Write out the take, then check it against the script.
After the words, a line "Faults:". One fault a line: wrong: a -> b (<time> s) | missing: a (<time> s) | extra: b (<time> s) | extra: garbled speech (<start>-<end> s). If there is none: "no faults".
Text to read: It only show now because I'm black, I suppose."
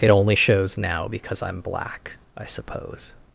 It only shows now because I'm black, I suppose."
Faults:
wrong: show -> shows (0.3 s)